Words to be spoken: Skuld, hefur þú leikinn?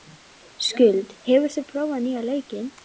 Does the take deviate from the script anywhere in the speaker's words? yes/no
yes